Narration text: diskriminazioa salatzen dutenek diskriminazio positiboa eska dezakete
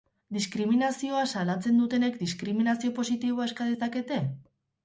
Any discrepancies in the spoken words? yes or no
no